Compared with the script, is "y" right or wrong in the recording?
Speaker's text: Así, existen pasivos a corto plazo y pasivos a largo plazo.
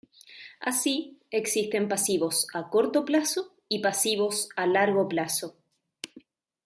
right